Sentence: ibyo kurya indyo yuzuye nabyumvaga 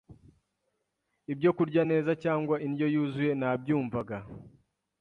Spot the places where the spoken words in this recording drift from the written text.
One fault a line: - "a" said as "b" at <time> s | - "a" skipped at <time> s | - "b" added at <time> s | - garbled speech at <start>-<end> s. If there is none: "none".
- "neza cyangwa" added at 1.9 s